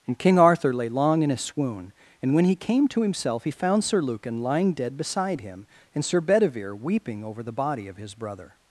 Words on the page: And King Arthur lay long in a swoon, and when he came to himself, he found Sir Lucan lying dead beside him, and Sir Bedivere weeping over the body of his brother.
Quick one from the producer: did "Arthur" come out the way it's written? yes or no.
yes